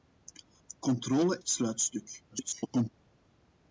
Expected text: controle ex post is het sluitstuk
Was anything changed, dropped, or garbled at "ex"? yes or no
yes